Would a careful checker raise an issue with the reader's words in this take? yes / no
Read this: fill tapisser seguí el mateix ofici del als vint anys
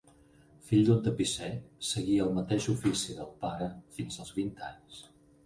yes